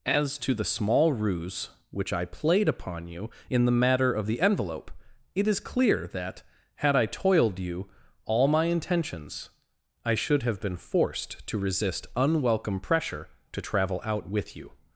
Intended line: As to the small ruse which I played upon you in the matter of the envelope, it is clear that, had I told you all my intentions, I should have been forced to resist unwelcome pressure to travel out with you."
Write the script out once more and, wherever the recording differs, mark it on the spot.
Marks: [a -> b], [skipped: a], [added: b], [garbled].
As to the small ruse which I played upon you in the matter of the envelope, it is clear that, had I [told -> toiled] you all my intentions, I should have been forced to resist unwelcome pressure to travel out with you."